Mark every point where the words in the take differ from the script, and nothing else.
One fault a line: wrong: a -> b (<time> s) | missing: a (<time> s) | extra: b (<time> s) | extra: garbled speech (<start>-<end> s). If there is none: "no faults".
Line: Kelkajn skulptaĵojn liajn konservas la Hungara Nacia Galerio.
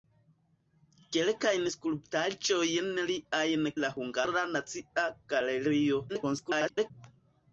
missing: konservas (3.7 s)
extra: garbled speech (6.1-6.9 s)